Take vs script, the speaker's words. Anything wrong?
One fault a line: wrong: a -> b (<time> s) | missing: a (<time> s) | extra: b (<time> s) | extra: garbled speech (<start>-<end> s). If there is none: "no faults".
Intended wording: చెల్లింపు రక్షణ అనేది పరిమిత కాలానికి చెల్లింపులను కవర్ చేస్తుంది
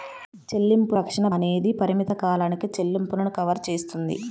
no faults